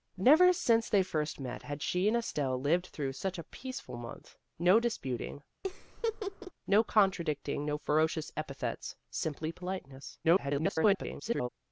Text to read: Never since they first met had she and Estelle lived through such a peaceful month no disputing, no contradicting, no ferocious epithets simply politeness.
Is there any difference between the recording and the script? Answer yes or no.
yes